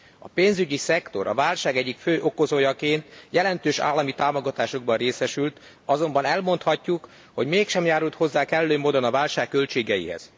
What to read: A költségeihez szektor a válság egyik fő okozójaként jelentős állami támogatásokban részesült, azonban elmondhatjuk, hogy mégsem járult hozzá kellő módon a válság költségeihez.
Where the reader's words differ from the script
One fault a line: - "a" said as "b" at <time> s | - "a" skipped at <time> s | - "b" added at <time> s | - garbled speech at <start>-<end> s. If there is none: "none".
- "költségeihez" said as "pénzügyi" at 0.3 s